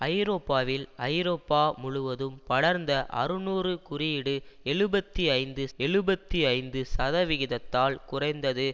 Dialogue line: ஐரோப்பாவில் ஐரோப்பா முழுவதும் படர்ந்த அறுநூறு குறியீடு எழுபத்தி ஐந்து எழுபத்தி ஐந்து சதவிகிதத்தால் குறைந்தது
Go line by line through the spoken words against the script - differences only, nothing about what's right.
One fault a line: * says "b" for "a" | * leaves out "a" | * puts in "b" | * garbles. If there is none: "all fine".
all fine